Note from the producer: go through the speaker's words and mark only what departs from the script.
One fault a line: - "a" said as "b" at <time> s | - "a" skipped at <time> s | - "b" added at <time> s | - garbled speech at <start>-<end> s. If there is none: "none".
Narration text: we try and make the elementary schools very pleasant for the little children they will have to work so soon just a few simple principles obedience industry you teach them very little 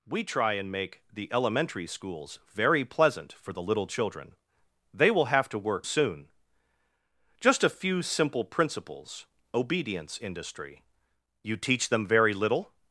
- "so" skipped at 5.9 s